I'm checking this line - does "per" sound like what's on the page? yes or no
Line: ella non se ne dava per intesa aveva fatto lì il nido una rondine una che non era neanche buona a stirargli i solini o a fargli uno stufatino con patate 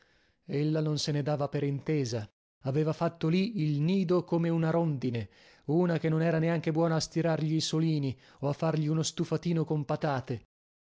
yes